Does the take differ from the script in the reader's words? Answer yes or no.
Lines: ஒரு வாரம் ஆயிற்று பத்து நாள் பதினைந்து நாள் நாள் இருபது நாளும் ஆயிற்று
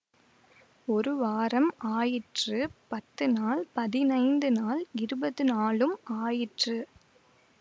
yes